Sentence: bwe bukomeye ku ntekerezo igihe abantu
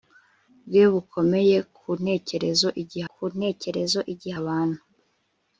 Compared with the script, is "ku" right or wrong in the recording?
right